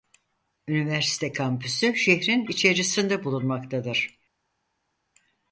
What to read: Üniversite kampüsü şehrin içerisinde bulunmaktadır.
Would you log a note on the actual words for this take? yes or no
no